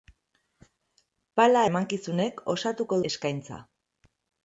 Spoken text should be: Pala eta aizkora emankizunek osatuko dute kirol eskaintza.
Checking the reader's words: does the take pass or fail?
fail